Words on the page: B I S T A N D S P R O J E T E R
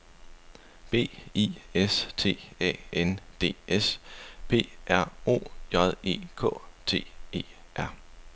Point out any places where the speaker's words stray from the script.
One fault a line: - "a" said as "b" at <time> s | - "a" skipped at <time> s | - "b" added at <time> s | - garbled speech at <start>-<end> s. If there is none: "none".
- "K" added at 6.3 s